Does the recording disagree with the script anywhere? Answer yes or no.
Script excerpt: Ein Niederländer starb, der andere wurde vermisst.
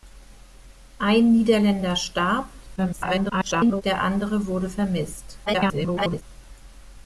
yes